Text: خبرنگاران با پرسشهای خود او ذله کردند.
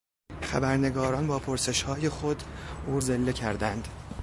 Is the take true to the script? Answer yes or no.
yes